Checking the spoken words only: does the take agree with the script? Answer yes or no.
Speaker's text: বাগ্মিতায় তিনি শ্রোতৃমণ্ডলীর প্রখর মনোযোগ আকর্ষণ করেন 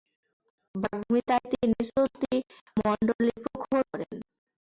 no